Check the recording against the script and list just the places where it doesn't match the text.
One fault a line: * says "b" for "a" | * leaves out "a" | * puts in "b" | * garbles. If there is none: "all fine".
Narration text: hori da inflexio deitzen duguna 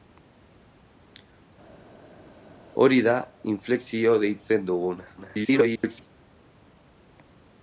* garbles